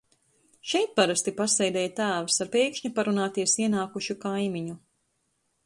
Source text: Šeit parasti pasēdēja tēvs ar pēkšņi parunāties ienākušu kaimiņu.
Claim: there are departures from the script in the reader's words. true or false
false